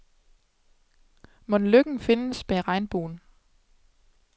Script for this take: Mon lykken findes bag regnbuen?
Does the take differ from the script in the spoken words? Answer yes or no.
no